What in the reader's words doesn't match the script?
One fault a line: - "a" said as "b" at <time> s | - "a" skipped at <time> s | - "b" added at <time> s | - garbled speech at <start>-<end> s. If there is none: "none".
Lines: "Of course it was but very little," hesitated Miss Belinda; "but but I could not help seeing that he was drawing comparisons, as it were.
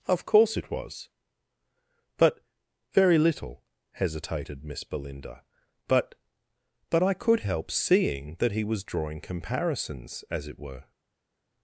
- "not" skipped at 7.4 s